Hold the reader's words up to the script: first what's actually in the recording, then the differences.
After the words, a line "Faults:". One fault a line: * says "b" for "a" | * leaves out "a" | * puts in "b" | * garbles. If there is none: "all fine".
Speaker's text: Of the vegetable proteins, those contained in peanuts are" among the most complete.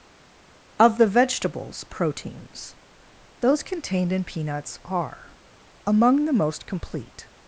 Of the vegetables proteins, those contained in peanuts are" among the most complete.
Faults:
* says "vegetables" for "vegetable"